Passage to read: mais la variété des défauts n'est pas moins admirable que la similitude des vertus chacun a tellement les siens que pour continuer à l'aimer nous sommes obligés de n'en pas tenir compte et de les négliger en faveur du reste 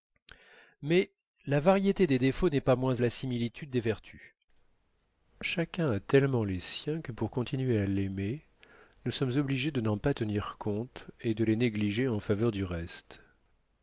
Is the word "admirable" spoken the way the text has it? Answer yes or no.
no